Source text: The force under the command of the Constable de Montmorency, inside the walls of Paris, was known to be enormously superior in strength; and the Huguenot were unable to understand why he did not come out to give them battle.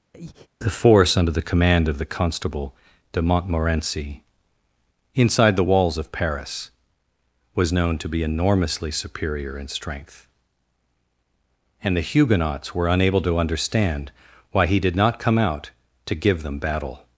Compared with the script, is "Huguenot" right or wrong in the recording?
wrong